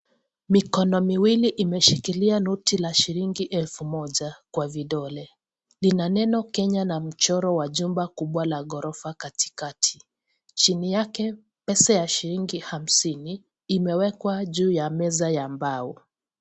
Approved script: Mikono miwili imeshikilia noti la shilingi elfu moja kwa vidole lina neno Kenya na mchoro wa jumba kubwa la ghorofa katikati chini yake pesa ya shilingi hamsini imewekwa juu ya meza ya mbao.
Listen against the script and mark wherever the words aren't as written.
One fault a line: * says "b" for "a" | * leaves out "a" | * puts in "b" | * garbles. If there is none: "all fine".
all fine